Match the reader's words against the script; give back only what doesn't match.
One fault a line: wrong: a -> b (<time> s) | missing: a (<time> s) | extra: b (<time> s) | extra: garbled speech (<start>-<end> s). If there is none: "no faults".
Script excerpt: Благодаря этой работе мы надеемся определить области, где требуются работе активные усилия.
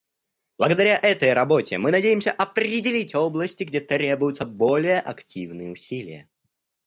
wrong: работе -> более (4.5 s)